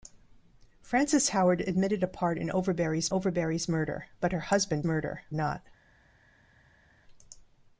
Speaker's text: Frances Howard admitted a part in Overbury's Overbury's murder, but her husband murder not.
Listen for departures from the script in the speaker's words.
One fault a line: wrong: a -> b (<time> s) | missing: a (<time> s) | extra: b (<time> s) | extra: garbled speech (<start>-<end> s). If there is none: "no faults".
no faults